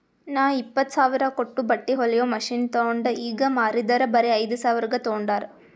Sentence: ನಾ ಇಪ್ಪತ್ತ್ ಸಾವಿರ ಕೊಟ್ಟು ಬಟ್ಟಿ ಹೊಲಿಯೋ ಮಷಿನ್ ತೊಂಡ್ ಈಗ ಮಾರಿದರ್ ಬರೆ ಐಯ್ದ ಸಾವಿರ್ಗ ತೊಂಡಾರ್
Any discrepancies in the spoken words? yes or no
no